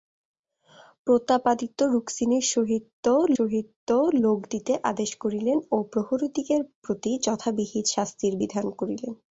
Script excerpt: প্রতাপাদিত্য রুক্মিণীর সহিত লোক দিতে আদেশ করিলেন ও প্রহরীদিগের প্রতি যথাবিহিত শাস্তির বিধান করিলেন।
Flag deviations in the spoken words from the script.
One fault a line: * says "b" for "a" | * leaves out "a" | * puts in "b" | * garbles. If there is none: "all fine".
* puts in "সহিত"